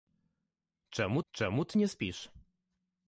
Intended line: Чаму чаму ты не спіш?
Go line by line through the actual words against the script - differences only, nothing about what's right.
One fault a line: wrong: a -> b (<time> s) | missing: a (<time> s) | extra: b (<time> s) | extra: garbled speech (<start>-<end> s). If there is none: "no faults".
no faults